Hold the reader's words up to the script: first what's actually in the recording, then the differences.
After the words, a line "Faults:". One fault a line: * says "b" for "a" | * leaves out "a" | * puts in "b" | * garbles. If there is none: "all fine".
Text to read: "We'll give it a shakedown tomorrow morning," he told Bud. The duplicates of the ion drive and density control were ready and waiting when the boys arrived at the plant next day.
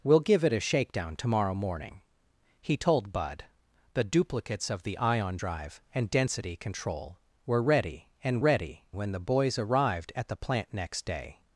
"We'll give it a shakedown tomorrow morning," he told Bud. The duplicates of the ion drive and density control were ready and ready when the boys arrived at the plant next day.
Faults:
* says "ready" for "waiting"